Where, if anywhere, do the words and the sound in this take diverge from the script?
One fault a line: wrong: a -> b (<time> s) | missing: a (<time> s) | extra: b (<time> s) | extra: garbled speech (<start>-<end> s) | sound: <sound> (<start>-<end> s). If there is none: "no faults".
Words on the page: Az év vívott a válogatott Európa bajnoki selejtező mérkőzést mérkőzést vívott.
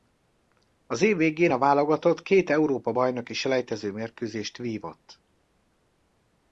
wrong: vívott -> végén (1.1 s)
extra: két (2.2 s)
missing: mérkőzést (4.6 s)